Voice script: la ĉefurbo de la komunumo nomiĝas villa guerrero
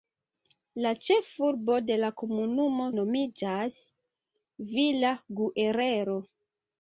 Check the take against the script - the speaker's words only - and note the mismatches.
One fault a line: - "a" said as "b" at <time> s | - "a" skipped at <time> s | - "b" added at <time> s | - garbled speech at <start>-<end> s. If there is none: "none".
none